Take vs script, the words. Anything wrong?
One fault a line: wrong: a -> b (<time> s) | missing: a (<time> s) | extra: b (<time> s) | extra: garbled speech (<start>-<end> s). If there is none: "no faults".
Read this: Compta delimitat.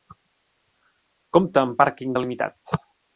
extra: amb pàrquing (1.6 s)